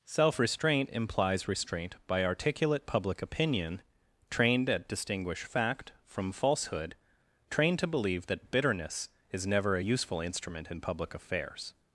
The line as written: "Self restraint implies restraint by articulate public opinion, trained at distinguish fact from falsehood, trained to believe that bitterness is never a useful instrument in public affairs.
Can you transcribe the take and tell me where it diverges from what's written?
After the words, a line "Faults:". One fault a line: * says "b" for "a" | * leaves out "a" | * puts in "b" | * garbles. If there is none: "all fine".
"Self restraint implies restraint by articulate public opinion, trained at distinguish fact from falsehood, trained to believe that bitterness is never a useful instrument in public affairs.
Faults:
all fine